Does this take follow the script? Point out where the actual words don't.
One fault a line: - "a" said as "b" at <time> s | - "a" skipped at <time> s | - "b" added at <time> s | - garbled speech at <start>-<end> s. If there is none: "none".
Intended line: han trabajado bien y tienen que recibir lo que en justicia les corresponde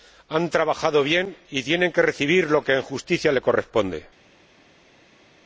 none